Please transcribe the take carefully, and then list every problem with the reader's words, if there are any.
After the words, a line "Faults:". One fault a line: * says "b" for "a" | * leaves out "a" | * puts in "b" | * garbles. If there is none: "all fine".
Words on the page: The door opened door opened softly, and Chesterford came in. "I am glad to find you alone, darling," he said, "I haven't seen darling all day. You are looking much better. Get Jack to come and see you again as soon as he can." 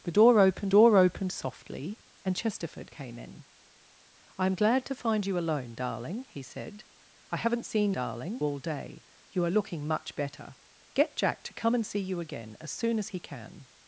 The door opened door opened softly, and Chesterford came in. "I am glad to find you alone, darling," he said, "I haven't seen darling all day. You are looking much better. Get Jack to come and see you again as soon as he can."
Faults:
all fine